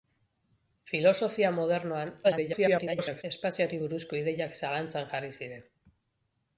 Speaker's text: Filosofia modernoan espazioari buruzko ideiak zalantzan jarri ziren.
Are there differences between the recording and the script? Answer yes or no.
yes